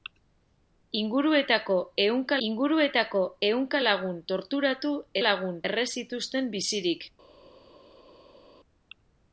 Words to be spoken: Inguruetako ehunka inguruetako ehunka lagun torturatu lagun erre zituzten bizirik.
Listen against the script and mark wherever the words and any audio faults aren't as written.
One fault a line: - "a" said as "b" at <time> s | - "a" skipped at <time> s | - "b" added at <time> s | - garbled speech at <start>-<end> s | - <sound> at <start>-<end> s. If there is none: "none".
none